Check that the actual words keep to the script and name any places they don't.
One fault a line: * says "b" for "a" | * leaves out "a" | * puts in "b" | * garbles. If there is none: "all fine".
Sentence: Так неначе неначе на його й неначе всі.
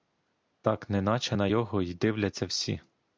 * leaves out "неначе"
* says "дивляться" for "неначе"